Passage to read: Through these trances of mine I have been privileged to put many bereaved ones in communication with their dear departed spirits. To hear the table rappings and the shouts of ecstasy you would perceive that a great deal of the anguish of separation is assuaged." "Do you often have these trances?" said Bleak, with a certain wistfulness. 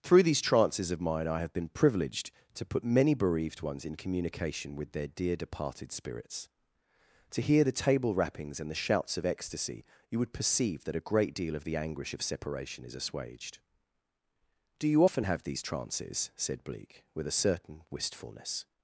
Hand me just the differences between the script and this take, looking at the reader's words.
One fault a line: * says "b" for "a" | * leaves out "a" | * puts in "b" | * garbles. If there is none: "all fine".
all fine